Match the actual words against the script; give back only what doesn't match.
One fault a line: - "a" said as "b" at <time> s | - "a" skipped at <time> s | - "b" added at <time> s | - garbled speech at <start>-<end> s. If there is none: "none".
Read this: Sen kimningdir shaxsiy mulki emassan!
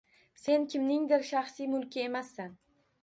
none